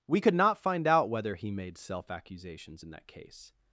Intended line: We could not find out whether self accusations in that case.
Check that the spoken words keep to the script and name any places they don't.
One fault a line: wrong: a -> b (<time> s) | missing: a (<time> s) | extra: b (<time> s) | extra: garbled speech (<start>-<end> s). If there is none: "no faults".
extra: he made (1.3 s)